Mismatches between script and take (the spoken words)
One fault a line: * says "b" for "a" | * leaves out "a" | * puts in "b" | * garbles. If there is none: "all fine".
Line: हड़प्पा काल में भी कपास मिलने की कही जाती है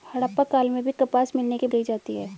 all fine